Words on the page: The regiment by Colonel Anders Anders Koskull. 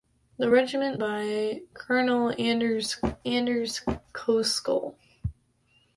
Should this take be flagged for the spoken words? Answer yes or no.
no